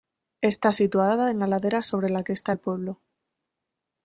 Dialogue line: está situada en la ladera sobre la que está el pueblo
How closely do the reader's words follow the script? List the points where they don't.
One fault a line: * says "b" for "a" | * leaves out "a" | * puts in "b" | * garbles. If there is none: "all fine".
all fine